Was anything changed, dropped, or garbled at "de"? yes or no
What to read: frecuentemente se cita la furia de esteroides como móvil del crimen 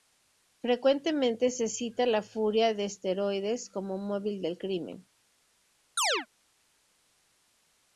no